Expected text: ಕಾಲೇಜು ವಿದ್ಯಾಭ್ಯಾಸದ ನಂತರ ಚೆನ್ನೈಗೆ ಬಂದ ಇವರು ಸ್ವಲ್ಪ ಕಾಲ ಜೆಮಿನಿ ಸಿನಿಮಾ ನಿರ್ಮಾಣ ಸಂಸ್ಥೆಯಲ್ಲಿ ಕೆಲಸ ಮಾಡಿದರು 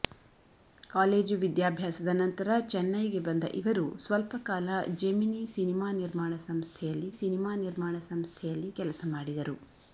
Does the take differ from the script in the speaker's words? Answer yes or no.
yes